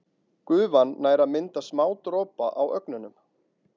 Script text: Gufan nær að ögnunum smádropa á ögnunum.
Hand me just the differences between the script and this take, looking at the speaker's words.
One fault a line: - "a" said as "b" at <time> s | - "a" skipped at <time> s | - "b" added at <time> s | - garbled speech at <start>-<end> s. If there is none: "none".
- "ögnunum" said as "mynda" at 1.3 s